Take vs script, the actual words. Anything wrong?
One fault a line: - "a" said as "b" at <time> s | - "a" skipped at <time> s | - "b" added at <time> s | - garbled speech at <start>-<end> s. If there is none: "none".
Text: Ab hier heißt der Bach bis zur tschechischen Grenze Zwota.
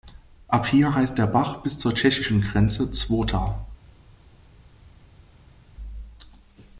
none